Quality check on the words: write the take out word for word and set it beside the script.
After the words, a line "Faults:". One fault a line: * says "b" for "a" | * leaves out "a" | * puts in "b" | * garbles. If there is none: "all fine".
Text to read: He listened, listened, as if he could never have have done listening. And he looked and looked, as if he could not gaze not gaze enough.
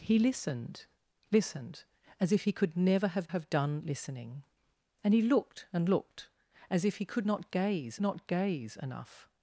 He listened, listened, as if he could never have have done listening. And he looked and looked, as if he could not gaze not gaze enough.
Faults:
all fine